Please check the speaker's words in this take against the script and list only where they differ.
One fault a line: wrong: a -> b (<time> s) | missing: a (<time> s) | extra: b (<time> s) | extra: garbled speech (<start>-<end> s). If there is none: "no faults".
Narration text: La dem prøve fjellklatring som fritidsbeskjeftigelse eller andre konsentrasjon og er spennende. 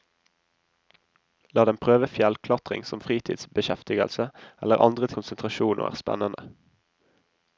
no faults